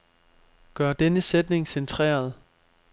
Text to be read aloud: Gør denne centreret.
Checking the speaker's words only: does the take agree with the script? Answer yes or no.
no